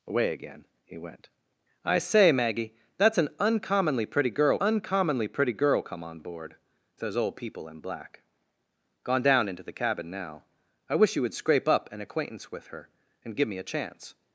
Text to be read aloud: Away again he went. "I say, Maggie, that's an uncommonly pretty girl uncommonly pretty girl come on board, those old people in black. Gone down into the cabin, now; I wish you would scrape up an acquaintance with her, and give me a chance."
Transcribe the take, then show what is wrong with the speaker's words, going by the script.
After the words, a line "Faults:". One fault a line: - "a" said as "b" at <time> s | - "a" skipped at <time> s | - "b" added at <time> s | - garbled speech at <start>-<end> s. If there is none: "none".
Away again he went. "I say, Maggie, that's an uncommonly pretty girl uncommonly pretty girl come on board, those old people in black. Gone down into the cabin, now; I wish you would scrape up an acquaintance with her, and give me a chance."
Faults:
none